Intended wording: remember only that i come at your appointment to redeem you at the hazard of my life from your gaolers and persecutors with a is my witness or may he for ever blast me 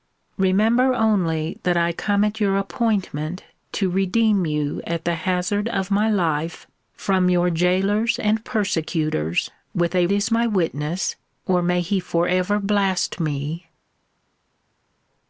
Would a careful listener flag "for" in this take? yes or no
no